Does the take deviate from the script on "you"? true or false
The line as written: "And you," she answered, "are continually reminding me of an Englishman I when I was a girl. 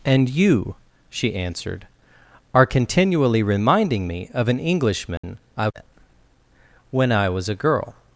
false